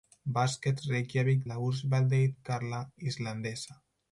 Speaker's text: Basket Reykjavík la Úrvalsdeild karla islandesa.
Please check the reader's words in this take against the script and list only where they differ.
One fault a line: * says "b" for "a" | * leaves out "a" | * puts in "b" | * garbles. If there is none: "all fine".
all fine